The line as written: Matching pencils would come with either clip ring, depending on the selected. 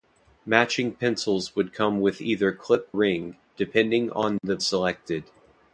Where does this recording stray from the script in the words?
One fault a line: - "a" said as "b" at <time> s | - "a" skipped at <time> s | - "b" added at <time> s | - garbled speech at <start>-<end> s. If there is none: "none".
none